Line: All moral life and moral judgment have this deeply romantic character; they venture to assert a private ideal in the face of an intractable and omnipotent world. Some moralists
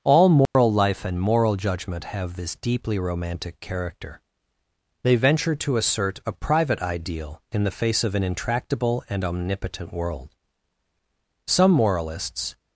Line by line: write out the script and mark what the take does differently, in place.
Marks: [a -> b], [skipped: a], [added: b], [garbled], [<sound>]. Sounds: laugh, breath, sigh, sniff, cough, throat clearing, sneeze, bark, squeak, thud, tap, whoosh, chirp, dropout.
All moral [dropout] life and moral judgment have this deeply romantic character; they venture to assert a private ideal in the face of an intractable and omnipotent world. Some moralists